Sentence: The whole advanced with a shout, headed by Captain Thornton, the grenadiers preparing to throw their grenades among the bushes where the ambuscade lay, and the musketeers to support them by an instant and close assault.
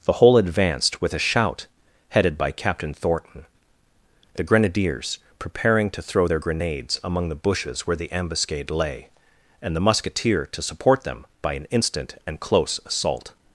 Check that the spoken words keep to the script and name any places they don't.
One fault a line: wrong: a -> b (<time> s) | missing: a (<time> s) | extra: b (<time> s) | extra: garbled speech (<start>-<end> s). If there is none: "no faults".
wrong: musketeers -> musketeer (9.8 s)